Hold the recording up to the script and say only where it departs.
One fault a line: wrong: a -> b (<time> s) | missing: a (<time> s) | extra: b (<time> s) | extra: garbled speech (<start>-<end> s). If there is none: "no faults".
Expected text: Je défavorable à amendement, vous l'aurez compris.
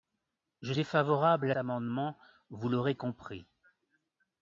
no faults